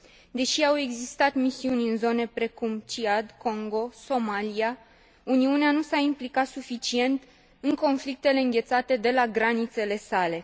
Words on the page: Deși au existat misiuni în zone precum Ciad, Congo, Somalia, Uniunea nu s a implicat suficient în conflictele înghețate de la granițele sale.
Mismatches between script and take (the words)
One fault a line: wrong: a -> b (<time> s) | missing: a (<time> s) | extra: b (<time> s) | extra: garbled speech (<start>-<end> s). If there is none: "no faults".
no faults